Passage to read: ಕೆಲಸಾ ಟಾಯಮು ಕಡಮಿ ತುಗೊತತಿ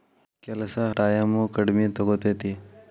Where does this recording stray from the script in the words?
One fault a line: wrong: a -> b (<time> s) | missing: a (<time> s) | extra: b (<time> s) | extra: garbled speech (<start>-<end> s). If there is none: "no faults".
no faults